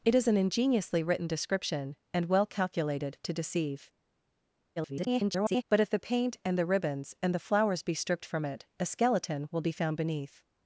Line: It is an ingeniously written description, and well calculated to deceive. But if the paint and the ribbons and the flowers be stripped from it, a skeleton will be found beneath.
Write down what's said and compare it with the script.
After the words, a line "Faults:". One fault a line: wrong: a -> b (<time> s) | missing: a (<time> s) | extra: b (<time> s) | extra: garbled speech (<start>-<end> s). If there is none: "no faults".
It is an ingeniously written description, and well calculated to deceive. [garbled] But if the paint and the ribbons and the flowers be stripped from it, a skeleton will be found beneath.
Faults:
extra: garbled speech (4.8-5.6 s)